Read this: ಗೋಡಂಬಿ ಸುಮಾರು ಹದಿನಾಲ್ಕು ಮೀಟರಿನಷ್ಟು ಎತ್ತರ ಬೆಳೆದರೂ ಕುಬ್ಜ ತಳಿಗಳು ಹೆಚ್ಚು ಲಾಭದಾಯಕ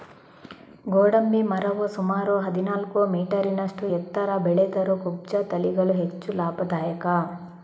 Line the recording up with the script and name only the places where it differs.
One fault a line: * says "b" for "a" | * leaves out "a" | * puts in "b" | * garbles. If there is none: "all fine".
* puts in "ಮರವು"